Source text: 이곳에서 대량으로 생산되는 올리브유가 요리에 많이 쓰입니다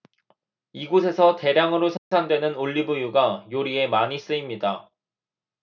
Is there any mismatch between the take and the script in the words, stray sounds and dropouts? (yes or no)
yes